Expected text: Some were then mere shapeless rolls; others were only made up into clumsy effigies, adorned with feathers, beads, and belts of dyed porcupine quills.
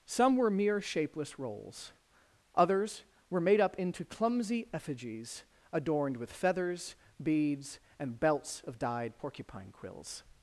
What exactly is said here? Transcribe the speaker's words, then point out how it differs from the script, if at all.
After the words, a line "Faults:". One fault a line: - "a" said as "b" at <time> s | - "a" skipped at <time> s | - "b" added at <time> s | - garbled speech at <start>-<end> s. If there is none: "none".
Some were mere shapeless rolls; others were made up into clumsy effigies, adorned with feathers, beads, and belts of dyed porcupine quills.
Faults:
- "then" skipped at 0.5 s
- "only" skipped at 3.4 s